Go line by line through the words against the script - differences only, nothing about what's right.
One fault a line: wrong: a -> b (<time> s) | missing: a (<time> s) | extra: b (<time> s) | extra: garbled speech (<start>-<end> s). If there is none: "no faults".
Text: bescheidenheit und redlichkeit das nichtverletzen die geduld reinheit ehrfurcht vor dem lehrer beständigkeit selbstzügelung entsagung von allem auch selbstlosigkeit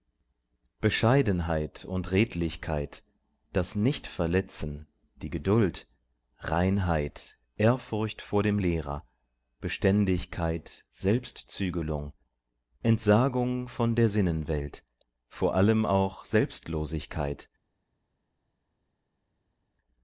extra: der sinnenwelt vor (13.9 s)